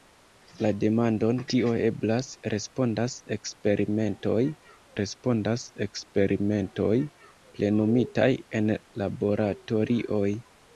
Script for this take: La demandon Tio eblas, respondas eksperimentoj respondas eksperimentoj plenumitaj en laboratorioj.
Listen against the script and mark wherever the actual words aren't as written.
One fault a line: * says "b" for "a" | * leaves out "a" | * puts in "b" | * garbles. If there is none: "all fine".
all fine